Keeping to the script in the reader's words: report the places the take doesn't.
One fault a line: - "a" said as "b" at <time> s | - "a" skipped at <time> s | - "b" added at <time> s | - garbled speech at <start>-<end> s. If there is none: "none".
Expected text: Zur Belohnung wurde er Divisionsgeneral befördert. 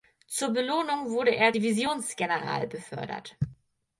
none